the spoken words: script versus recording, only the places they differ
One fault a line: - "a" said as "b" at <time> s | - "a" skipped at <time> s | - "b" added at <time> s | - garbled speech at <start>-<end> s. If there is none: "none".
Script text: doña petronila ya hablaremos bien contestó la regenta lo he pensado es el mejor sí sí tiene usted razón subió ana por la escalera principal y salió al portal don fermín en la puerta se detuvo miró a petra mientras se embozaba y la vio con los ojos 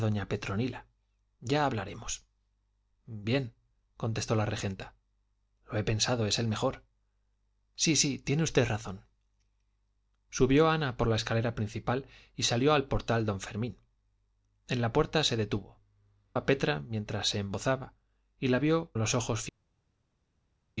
- "miró" skipped at 15.8 s
- "con" skipped at 18.9 s